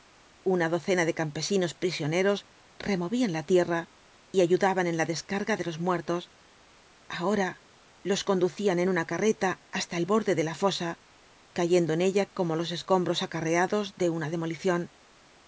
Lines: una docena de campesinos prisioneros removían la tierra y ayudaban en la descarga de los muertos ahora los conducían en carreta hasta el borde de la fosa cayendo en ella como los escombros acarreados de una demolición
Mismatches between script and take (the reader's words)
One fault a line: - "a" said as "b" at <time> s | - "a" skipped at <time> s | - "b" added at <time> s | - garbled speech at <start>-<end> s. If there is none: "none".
- "una" added at 8.9 s